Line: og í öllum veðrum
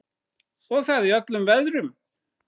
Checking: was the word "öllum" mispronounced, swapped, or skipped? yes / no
no